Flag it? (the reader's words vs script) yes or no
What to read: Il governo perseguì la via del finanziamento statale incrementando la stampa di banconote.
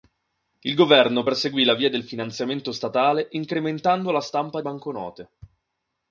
yes